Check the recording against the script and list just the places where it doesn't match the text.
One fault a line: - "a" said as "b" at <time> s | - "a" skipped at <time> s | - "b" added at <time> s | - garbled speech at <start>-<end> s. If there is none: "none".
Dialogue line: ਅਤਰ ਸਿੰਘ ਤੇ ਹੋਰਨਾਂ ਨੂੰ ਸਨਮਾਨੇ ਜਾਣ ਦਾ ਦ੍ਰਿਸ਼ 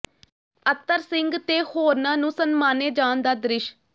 none